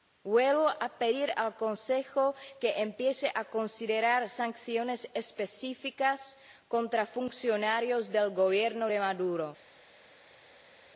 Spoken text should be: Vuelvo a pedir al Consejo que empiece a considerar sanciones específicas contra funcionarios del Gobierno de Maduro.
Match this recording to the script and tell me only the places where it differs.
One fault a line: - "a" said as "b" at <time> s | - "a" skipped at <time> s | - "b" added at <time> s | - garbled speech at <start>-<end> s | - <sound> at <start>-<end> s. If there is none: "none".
none